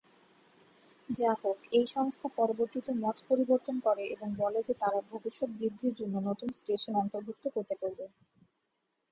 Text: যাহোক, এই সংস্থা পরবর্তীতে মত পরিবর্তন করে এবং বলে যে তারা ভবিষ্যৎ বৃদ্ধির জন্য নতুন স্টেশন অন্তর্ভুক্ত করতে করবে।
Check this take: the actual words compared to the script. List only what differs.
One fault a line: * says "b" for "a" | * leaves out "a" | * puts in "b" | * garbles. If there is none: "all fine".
all fine